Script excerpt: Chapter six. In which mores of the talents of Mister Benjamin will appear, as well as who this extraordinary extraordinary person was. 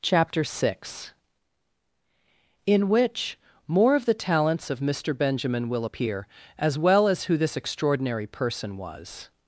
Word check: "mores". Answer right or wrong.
wrong